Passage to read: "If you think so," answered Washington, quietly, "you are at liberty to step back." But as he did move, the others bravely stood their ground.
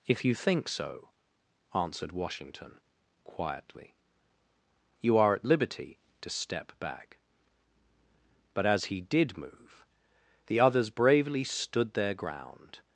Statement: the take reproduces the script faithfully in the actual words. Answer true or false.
true